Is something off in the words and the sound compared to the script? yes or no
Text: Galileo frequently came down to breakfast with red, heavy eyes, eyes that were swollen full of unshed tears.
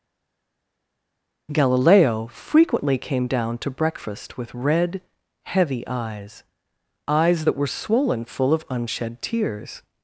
no